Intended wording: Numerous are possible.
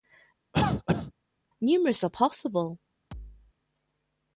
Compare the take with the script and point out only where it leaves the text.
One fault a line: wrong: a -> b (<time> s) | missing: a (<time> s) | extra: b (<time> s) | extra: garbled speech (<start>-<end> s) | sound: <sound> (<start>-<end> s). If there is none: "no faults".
sound: cough (0.5-1.1 s)
sound: thud (3.1-3.5 s)